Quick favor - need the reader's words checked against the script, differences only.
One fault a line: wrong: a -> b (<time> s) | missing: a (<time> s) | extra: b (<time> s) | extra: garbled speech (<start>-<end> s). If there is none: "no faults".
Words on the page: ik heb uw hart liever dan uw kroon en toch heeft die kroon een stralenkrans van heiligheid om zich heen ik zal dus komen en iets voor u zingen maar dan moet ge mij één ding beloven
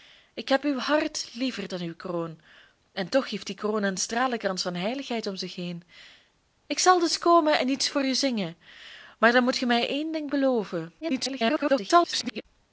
extra: garbled speech (11.0-12.5 s)